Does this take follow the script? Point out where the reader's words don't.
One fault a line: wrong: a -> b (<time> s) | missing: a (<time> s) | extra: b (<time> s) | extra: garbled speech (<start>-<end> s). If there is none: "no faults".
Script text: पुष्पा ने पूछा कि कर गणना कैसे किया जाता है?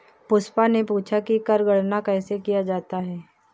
no faults